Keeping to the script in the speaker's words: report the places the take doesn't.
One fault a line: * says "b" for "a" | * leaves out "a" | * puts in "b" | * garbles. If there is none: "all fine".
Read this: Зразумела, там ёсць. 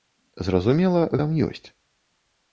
all fine